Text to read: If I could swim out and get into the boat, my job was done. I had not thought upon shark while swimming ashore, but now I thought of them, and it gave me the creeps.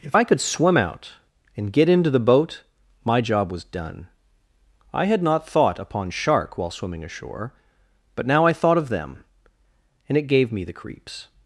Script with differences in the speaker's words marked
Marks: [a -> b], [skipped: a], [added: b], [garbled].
If I could swim out and get into the boat, my job was done. I had not thought upon shark while swimming ashore, but now I thought of them, and it gave me the creeps.